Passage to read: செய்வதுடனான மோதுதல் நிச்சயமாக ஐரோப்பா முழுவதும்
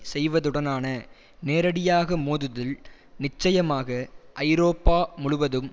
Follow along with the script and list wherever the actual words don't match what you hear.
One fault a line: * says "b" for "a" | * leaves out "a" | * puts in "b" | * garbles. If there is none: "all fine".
* puts in "நேரடியாக"